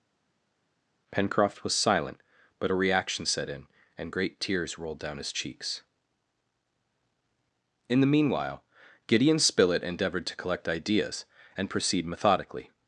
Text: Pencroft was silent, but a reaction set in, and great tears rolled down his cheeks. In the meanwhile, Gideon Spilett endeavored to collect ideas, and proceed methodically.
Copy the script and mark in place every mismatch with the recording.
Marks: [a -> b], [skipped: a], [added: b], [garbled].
Pencroft was silent, but a reaction set in, and great tears rolled down his cheeks. In the meanwhile, Gideon Spilett endeavored to collect ideas, and proceed methodically.